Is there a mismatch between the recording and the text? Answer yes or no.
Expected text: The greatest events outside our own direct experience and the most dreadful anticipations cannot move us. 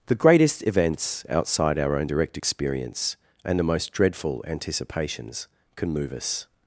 yes